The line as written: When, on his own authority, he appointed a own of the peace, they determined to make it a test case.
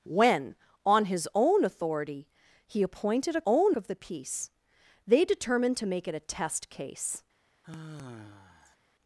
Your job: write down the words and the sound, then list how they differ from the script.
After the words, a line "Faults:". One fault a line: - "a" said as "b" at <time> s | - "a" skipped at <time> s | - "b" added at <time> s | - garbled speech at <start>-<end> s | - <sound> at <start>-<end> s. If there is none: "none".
When, on his own authority, he appointed a own of the peace, they determined to make it a test case.
Faults:
- sigh at 7.6-8.8 s